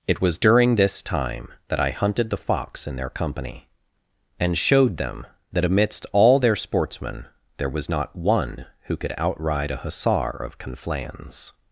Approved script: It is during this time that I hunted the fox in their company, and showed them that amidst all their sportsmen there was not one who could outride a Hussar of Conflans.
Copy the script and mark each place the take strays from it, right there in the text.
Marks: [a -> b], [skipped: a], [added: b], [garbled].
It [is -> was] during this time that I hunted the fox in their company, and showed them that amidst all their sportsmen there was not one who could outride a Hussar of Conflans.